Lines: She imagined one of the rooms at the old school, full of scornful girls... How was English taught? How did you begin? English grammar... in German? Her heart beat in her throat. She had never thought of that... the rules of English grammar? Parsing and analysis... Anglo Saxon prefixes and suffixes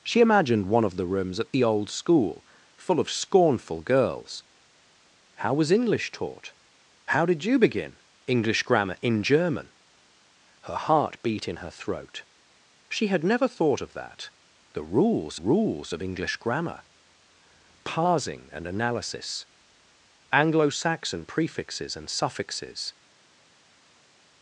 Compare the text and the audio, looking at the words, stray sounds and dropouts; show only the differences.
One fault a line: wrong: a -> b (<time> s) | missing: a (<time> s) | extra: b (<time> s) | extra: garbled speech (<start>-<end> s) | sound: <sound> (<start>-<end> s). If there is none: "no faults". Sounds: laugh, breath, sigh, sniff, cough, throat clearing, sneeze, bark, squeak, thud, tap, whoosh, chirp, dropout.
extra: rules (15.3 s)